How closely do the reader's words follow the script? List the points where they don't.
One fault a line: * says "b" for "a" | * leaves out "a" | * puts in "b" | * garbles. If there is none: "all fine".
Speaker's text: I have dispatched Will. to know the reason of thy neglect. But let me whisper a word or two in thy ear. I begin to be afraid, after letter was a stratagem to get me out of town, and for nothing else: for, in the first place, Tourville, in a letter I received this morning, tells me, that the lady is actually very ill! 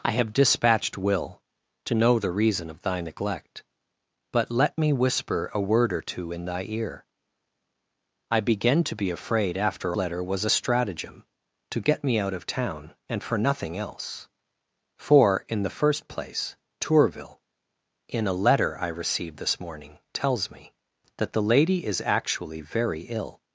all fine